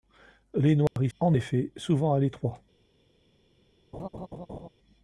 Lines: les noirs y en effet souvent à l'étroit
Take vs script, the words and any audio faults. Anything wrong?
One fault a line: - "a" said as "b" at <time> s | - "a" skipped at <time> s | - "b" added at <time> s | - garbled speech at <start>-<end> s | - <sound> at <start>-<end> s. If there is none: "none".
- dropout at 0.9-1.0 s
- laugh at 3.9-4.7 s